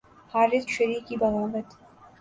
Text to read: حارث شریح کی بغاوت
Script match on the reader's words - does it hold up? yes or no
yes